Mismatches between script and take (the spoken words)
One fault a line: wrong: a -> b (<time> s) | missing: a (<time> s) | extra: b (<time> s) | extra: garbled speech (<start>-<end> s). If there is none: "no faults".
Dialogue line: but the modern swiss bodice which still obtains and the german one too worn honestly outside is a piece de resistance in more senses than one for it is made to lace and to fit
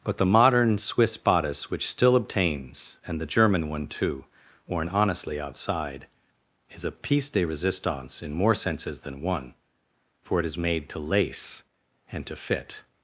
no faults